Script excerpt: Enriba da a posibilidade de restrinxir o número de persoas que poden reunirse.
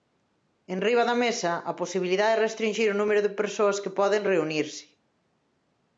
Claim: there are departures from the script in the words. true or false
true